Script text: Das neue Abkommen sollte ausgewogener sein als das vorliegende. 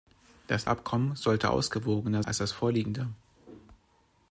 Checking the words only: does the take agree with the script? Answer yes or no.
no